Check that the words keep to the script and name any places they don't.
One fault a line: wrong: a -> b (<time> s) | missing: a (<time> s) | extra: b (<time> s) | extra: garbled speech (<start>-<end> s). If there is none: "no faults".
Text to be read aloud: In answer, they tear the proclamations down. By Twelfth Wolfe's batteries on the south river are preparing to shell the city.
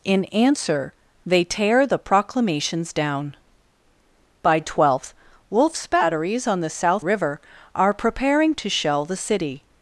no faults